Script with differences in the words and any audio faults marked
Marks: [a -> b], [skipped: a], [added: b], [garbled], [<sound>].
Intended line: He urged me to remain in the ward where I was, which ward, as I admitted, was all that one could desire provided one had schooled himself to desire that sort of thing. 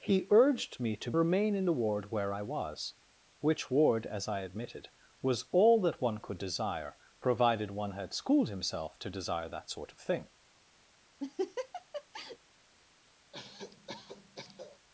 He urged me to remain in the ward where I was, which ward, as I admitted, was all that one could desire provided one had schooled himself to desire that sort of thing. [laugh] [cough]